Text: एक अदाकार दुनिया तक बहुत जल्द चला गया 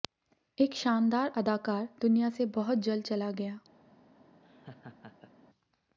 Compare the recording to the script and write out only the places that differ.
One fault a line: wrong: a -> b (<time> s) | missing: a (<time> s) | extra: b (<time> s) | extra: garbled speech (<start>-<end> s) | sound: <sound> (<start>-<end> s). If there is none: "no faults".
extra: शानदार (0.8 s)
wrong: तक -> से (2.3 s)
sound: laugh (4.4-5.3 s)